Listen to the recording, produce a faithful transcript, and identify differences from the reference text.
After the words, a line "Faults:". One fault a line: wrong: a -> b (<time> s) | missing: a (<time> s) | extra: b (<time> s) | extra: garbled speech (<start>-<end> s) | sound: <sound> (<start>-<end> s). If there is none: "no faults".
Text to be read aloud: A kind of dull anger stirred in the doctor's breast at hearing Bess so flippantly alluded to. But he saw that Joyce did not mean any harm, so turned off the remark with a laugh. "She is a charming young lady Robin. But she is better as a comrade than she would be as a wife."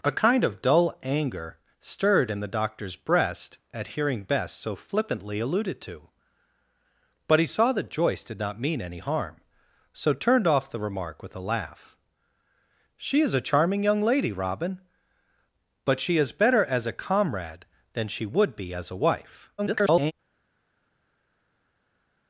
A kind of dull anger stirred in the doctor's breast at hearing Bess so flippantly alluded to. But he saw that Joyce did not mean any harm, so turned off the remark with a laugh. "She is a charming young lady Robin. But she is better as a comrade than she would be as a wife." [garbled]
Faults:
extra: garbled speech (19.6-20.1 s)